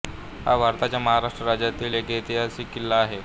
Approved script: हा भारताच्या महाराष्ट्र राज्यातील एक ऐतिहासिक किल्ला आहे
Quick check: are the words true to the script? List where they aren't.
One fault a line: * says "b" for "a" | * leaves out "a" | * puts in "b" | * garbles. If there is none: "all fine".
all fine